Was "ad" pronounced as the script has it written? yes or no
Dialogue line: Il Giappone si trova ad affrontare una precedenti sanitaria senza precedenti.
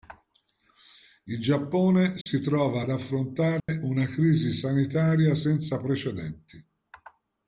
yes